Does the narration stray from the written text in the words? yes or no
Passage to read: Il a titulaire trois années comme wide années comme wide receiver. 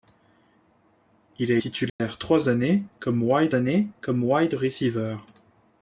no